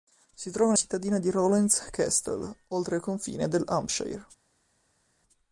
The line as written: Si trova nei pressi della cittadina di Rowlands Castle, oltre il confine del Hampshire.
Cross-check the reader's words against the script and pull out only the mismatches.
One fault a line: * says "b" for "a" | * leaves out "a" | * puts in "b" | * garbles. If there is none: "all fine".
* leaves out "nei pressi della"